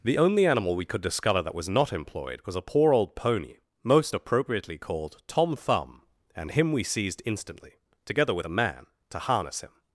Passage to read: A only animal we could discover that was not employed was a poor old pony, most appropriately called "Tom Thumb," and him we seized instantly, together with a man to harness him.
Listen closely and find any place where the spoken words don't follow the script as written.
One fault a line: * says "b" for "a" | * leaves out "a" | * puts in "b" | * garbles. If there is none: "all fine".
* says "The" for "A"